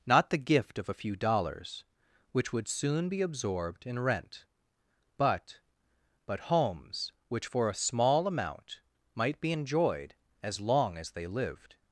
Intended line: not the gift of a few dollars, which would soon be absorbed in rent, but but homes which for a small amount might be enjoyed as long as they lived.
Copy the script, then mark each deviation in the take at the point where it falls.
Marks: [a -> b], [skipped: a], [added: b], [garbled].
not the gift of a few dollars, which would soon be absorbed in rent, but but homes which for a small amount might be enjoyed as long as they lived.